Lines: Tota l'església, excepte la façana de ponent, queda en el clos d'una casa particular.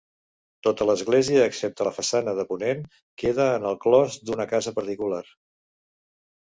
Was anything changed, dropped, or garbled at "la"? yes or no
no